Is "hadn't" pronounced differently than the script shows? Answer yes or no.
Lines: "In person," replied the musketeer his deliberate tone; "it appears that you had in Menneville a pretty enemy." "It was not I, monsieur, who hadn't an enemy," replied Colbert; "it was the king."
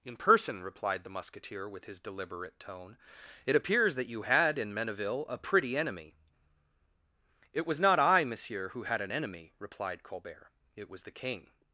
yes